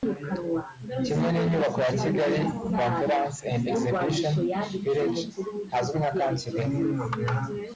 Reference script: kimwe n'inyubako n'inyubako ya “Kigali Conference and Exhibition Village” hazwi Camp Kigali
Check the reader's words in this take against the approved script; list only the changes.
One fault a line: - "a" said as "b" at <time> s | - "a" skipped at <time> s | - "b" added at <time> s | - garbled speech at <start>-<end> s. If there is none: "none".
- "n'inyubako" skipped at 1.8 s
- "nka" added at 6.0 s